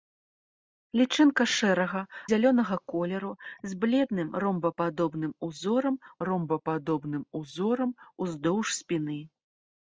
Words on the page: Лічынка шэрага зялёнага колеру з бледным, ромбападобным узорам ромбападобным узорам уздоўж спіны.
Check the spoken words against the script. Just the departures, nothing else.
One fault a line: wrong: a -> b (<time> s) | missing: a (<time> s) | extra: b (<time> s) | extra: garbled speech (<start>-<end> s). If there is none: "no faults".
no faults